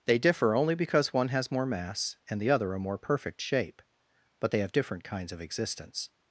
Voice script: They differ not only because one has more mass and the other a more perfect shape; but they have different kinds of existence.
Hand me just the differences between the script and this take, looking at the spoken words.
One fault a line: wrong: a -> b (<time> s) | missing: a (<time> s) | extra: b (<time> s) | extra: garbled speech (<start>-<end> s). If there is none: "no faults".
missing: not (0.6 s)